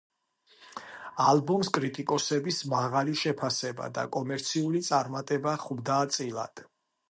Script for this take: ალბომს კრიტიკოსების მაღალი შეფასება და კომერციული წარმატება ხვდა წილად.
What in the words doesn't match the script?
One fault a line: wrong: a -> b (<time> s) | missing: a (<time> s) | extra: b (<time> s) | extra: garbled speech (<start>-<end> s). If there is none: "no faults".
no faults